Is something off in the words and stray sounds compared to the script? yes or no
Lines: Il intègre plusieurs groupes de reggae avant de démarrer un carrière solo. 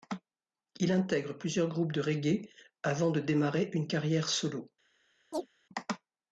yes